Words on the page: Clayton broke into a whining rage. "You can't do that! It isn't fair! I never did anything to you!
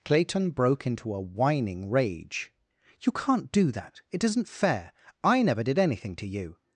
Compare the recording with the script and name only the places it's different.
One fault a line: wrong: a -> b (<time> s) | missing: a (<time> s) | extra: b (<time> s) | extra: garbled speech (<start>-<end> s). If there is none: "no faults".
no faults